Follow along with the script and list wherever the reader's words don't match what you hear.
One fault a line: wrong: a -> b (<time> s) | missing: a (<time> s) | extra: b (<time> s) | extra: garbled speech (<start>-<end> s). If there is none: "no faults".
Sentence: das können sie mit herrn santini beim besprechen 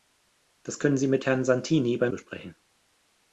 no faults